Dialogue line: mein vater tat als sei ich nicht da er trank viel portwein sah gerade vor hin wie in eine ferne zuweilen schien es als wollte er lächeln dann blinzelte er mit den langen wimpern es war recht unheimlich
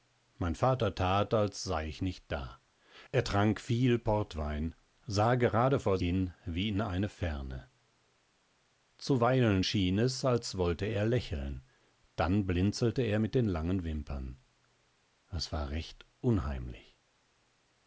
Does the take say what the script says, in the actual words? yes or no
yes